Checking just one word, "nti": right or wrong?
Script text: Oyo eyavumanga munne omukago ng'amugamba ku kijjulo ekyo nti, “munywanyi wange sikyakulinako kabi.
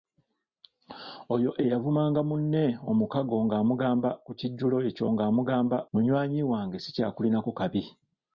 wrong